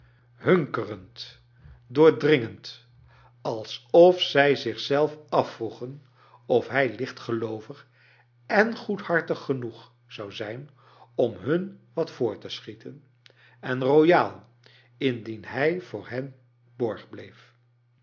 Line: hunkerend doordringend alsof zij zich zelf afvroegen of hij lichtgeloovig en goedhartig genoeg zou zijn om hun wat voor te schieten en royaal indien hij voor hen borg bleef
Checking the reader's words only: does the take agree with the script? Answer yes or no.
yes